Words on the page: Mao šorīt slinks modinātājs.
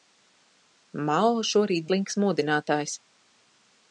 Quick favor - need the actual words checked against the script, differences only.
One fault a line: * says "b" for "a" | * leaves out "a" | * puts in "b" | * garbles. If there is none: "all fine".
all fine